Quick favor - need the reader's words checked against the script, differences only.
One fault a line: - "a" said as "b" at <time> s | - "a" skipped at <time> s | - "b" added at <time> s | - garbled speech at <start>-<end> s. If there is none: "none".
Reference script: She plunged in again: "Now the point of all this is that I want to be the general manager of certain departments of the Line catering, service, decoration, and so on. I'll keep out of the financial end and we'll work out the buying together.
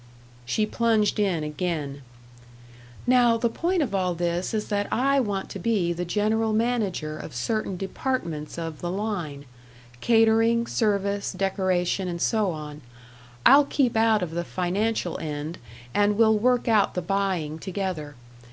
none